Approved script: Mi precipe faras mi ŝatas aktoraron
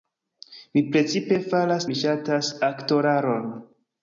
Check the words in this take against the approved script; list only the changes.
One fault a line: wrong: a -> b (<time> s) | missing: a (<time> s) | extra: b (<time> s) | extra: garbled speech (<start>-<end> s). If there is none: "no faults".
no faults